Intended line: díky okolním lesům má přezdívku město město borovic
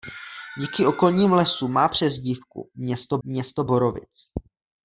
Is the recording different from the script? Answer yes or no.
no